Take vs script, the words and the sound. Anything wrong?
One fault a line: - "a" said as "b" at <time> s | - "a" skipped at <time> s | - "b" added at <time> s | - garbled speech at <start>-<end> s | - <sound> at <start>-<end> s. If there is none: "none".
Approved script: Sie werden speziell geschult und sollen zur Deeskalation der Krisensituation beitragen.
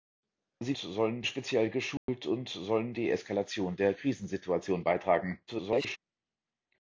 - "werden" said as "sollen" at 0.8 s
- dropout at 2.0-2.1 s
- "zur" skipped at 2.9 s
- garbled speech at 5.5-6.0 s